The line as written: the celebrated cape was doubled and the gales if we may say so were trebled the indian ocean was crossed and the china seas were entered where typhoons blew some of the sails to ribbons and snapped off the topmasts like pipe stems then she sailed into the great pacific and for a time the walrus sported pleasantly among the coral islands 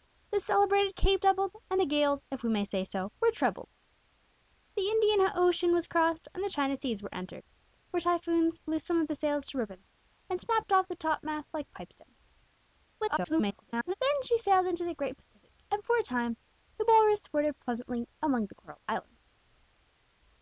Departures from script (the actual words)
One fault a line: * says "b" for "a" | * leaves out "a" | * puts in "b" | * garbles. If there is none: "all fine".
* leaves out "was"
* garbles